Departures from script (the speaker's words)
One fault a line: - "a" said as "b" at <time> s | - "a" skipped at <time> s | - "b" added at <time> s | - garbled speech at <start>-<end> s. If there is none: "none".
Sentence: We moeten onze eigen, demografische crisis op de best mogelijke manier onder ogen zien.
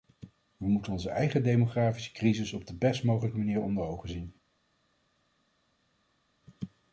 none